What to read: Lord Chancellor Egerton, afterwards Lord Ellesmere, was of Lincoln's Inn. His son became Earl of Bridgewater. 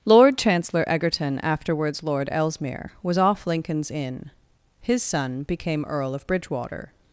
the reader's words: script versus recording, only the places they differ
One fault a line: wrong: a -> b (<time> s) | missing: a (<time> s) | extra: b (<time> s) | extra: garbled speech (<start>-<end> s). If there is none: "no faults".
wrong: of -> off (3.2 s)